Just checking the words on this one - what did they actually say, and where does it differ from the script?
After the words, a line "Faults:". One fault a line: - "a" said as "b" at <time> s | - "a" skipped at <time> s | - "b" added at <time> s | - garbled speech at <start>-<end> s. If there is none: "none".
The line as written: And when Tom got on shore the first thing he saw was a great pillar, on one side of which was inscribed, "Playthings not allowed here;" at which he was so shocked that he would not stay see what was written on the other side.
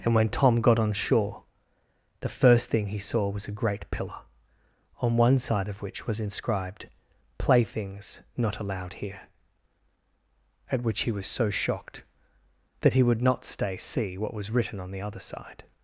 And when Tom got on shore the first thing he saw was a great pillar, on one side of which was inscribed, "Playthings not allowed here;" at which he was so shocked that he would not stay see what was written on the other side.
Faults:
none